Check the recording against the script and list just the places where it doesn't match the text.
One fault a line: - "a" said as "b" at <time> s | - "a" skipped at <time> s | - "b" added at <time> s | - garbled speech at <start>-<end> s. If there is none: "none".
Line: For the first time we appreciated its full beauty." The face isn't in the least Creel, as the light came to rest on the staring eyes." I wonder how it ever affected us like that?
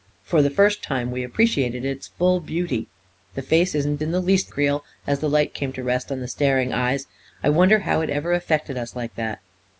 none